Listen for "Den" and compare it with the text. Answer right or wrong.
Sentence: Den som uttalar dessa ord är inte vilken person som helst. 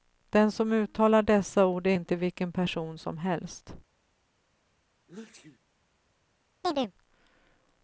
right